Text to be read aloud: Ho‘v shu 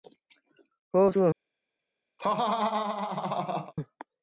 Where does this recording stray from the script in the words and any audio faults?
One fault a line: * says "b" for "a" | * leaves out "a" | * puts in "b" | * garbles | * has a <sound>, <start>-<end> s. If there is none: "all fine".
* has a laugh, 2.2-3.7 s